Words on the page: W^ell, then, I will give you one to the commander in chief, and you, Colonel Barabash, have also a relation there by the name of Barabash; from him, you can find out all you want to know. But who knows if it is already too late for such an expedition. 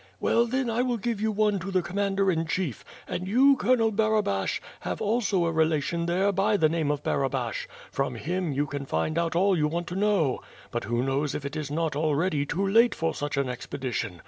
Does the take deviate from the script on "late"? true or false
false